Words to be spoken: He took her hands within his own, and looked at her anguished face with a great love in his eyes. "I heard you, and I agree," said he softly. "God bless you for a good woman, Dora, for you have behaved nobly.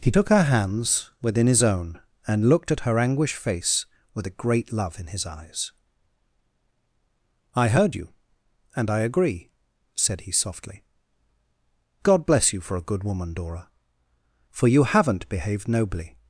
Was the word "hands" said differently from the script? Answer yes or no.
no